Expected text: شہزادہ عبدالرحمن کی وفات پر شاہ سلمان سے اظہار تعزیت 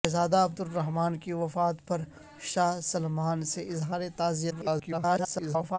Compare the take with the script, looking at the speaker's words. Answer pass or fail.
fail